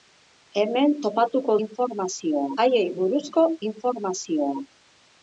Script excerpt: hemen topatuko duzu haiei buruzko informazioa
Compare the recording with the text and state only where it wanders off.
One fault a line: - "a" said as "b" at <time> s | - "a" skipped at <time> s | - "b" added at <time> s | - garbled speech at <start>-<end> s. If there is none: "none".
- "duzu" said as "informazioa" at 1.7 s